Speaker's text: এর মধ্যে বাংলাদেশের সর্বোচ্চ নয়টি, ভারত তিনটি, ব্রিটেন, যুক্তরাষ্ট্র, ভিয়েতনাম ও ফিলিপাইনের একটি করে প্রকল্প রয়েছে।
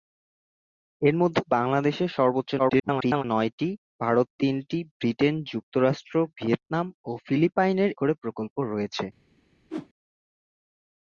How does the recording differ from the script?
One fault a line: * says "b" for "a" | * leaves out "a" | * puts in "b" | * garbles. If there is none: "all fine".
* garbles
* leaves out "একটি"